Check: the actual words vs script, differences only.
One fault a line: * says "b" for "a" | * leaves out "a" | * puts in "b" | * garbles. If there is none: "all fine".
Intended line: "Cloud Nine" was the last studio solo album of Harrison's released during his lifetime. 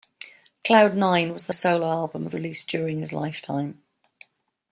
* leaves out "last studio"
* leaves out "Harrison's"